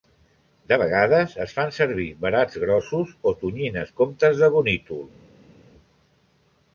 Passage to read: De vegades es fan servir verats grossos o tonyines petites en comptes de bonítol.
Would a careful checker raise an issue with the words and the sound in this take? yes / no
yes